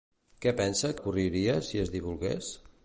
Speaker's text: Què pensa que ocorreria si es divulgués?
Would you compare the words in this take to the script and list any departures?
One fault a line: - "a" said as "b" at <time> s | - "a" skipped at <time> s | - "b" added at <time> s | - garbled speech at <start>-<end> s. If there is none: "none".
- "que" skipped at 0.9 s